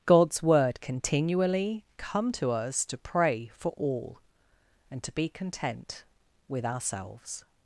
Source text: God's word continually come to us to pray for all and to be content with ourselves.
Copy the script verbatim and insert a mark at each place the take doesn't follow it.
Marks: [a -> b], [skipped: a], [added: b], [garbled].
God's word continually come to us to pray for all and to be content with ourselves.